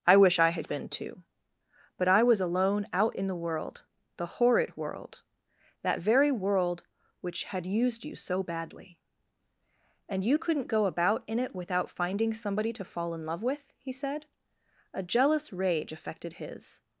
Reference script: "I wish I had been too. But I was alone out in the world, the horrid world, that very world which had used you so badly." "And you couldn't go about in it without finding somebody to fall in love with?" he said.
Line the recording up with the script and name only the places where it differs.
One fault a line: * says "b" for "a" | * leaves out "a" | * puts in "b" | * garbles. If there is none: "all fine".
* puts in "A jealous rage affected his"